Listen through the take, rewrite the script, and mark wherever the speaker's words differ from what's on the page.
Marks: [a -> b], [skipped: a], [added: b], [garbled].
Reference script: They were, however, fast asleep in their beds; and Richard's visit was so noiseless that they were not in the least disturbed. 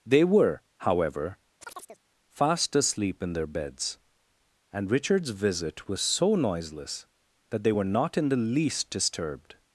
They were, however, fast asleep in their beds; and Richard's visit was so noiseless that they were not in the least disturbed.